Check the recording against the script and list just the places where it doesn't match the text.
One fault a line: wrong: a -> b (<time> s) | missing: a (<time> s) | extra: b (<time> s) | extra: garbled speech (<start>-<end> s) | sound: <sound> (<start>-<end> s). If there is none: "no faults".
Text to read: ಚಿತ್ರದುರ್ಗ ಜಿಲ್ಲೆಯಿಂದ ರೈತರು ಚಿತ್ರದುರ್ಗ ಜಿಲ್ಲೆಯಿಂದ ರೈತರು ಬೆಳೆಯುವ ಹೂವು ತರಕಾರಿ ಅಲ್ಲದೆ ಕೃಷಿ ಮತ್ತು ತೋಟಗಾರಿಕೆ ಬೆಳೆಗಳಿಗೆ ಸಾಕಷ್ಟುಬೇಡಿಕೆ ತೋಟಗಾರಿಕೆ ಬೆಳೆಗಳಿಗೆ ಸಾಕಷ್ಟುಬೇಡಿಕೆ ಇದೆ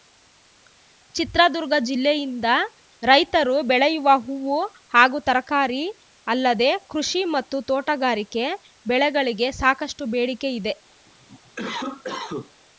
missing: ಚಿತ್ರದುರ್ಗ ಜಿಲ್ಲೆಯಿಂದ ರೈತರು (3.5 s)
extra: ಹಾಗೂ (4.9 s)
missing: ತೋಟಗಾರಿಕೆ ಬೆಳೆಗಳಿಗೆ ಸಾಕಷ್ಟುಬೇಡಿಕೆ (10.5 s)
sound: cough (11.1-12.5 s)